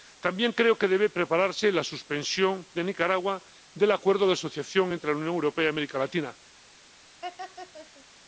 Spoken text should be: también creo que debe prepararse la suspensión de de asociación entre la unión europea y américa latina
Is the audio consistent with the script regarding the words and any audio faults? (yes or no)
no